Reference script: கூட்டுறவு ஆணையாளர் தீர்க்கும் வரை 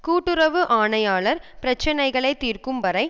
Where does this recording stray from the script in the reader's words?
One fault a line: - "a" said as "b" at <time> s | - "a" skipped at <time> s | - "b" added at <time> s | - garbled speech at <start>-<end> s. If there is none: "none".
- "பிரச்சினைகளை" added at 1.6 s